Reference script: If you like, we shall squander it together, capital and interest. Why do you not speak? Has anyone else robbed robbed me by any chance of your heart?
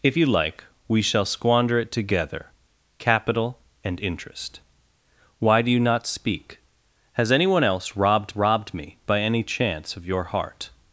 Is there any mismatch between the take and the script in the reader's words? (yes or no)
no